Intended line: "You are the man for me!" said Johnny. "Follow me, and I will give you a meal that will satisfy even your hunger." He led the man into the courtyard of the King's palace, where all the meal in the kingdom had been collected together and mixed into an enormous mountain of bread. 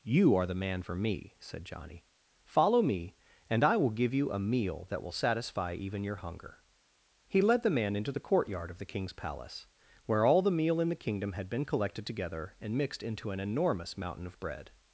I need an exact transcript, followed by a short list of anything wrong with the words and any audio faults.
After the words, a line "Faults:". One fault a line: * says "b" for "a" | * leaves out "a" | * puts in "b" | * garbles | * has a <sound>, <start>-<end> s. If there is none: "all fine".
"You are the man for me!" said Johnny. "Follow me, and I will give you a meal that will satisfy even your hunger." He led the man into the courtyard of the King's palace, where all the meal in the kingdom had been collected together and mixed into an enormous mountain of bread.
Faults:
all fine